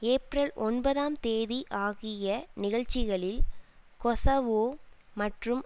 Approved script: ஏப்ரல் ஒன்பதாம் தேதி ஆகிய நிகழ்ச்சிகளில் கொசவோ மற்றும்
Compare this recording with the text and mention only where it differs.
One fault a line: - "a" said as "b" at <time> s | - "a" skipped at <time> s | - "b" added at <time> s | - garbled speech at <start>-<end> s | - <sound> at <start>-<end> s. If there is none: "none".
none